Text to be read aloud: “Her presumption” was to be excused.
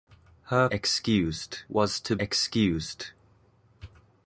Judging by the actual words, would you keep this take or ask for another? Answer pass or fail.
fail